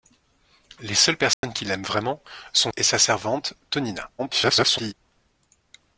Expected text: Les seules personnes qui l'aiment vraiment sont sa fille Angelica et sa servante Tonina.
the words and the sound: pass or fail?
fail